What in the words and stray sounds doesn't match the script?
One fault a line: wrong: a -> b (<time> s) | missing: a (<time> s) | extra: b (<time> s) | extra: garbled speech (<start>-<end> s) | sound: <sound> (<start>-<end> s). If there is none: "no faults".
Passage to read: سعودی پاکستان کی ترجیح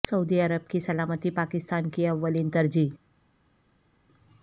extra: عرب کی سلامتی (0.4 s)
extra: اولین (2.1 s)